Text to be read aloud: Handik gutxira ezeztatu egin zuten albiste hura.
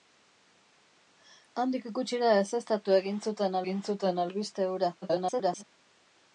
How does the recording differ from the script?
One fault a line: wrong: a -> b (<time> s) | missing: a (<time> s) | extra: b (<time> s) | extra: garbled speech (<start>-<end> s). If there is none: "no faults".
extra: egin zuten (3.6 s)
extra: garbled speech (5.0-5.6 s)